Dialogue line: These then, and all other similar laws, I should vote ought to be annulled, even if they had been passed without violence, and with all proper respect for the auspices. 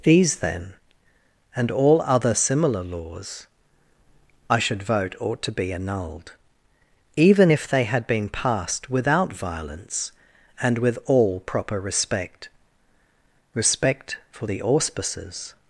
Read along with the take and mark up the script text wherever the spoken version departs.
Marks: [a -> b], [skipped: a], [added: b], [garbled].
These then, and all other similar laws, I should vote ought to be annulled, even if they had been passed without violence, and with all proper respect [added: respect] for the auspices.